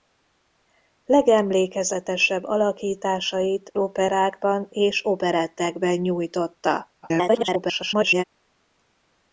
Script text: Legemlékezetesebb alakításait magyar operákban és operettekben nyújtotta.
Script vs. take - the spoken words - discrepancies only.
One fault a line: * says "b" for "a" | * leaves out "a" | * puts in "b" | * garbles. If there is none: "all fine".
* leaves out "magyar"
* garbles